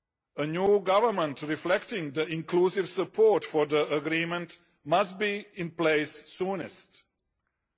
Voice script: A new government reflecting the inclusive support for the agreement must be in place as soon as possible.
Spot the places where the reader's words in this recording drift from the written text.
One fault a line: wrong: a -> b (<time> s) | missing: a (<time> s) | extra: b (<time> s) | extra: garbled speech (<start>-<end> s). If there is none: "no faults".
no faults